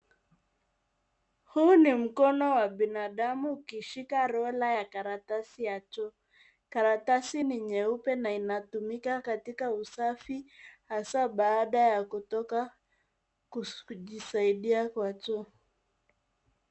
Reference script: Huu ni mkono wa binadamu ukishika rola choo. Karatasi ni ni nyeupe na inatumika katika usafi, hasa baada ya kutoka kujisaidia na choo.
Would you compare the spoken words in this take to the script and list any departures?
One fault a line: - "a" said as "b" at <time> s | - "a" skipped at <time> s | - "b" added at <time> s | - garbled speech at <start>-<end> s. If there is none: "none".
- "ya karatasi ya" added at 4.7 s
- "ni" skipped at 7.6 s
- "na" said as "kwa" at 14.9 s